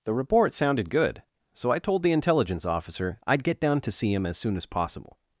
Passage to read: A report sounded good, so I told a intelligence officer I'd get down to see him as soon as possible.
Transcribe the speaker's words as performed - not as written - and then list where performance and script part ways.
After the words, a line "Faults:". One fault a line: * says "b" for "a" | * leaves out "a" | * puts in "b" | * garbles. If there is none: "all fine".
The report sounded good, so I told the intelligence officer I'd get down to see him as soon as possible.
Faults:
* says "The" for "A"
* says "the" for "a"